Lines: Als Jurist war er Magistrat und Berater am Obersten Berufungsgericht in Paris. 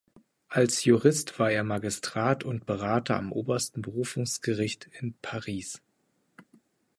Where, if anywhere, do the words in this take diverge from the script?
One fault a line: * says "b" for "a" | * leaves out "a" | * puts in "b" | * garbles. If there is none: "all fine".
all fine